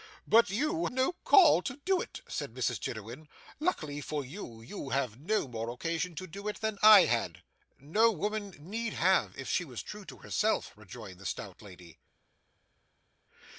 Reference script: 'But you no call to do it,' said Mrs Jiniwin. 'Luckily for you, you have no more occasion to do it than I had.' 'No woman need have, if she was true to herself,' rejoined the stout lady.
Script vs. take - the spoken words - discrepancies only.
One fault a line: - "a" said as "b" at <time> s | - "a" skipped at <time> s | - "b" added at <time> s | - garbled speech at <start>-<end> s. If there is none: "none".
none